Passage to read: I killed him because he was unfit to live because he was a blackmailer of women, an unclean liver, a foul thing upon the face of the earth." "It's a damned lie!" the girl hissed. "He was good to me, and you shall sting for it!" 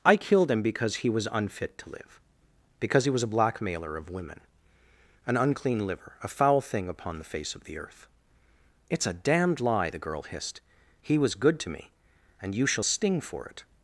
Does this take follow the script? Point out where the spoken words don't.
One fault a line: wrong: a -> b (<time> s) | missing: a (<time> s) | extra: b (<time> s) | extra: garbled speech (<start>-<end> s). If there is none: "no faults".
no faults